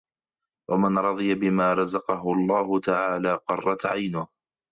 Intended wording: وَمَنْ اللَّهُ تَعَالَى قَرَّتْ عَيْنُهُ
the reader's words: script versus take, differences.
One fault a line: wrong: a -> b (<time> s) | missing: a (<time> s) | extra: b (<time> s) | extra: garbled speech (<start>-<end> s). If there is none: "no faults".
extra: رَضِيَ بِمَا رَزَقَهُ (1.0 s)